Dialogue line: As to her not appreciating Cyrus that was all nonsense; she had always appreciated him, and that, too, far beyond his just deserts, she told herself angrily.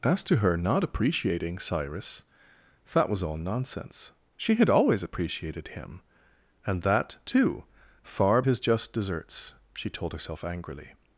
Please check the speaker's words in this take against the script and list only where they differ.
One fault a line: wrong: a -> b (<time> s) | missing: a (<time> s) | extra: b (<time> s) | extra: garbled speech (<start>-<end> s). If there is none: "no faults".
missing: beyond (8.4 s)